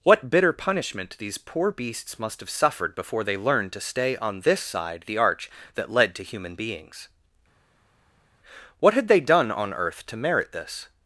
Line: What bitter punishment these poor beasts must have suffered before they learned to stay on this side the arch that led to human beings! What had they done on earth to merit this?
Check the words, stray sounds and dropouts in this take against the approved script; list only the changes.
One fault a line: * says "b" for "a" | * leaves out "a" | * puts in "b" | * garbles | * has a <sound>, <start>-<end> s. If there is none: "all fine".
all fine